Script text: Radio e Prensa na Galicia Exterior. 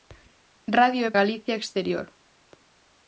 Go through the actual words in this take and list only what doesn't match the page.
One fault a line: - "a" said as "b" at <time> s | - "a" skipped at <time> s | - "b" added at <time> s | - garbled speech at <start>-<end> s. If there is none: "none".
- "Prensa na" skipped at 1.1 s